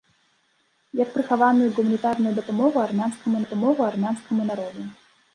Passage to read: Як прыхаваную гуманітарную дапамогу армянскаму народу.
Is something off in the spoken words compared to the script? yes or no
yes